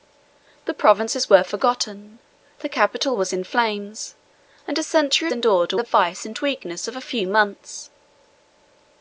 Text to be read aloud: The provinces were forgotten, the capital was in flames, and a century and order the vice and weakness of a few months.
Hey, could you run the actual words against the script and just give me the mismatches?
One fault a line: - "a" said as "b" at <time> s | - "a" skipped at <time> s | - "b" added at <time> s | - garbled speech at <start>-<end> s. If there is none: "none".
none